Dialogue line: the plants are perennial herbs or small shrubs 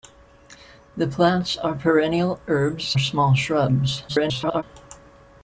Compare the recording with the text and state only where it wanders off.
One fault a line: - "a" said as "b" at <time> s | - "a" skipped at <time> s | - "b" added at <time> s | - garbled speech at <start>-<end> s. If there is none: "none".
- "or" skipped at 3.0 s
- garbled speech at 4.1-4.6 s